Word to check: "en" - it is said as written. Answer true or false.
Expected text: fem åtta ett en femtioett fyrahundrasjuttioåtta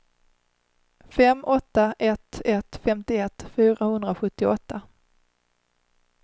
false